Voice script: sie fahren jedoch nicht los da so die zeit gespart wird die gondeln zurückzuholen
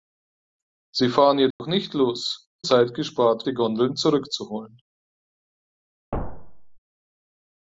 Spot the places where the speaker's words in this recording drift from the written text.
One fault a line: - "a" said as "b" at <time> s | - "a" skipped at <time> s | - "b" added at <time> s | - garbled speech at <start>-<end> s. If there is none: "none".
- "da so die" skipped at 2.5 s
- "wird" skipped at 3.5 s